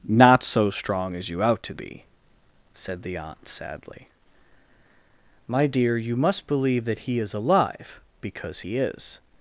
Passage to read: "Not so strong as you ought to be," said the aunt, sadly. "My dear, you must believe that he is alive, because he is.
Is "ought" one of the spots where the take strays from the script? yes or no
yes